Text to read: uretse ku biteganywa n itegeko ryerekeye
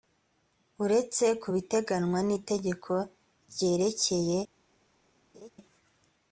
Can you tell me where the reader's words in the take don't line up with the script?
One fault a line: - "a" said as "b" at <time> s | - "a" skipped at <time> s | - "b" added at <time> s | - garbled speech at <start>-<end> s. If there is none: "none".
none